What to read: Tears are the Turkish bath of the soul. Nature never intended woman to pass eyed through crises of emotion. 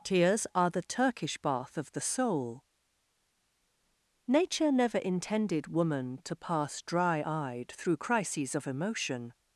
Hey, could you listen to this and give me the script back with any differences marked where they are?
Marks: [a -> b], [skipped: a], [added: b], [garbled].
Tears are the Turkish bath of the soul. Nature never intended woman to pass [added: dry] eyed through crises of emotion.